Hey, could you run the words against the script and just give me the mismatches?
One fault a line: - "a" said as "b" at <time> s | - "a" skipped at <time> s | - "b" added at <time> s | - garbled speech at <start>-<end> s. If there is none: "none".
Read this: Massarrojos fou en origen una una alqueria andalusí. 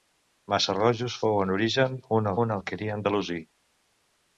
none